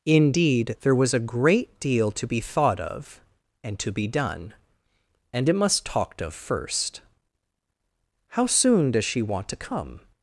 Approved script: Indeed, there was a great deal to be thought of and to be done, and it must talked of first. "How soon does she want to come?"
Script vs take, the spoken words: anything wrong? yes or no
no